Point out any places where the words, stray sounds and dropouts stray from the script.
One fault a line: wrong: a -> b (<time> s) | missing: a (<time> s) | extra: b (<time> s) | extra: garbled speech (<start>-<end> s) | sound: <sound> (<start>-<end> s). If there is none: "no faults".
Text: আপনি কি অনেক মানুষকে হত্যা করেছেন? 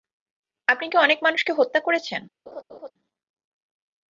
sound: laugh (2.5-2.9 s)